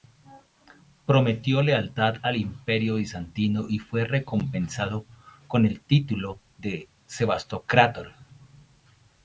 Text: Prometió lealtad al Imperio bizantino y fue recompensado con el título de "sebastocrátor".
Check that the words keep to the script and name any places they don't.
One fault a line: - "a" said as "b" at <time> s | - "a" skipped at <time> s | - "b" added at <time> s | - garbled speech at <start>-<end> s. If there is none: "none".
none